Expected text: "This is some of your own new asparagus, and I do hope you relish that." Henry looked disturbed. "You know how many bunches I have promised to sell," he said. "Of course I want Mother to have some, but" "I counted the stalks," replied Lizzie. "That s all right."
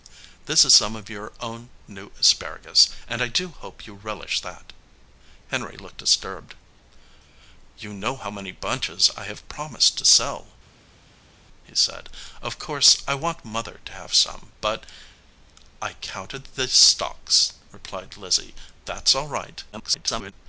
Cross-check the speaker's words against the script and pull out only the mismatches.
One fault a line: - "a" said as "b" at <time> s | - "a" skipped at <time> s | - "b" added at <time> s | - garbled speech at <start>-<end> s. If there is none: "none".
- garbled speech at 19.7-20.3 s